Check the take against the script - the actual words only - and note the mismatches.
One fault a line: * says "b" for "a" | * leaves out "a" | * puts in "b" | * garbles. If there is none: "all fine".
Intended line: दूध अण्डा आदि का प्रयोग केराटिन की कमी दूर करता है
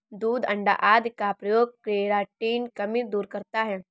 * leaves out "की"